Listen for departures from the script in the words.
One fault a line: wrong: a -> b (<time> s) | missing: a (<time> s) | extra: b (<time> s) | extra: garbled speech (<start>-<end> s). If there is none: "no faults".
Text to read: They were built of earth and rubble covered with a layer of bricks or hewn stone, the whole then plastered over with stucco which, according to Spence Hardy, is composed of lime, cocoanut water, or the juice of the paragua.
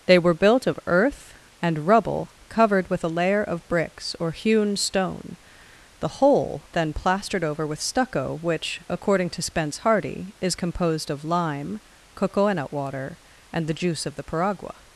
wrong: or -> and (13.5 s)